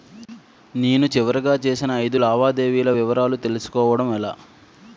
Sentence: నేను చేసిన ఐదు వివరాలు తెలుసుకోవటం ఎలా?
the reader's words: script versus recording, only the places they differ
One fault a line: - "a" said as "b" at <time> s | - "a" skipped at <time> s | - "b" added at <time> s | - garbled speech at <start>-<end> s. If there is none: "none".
- "చివరిగా" added at 1.1 s
- "లావాదేవీల" added at 2.2 s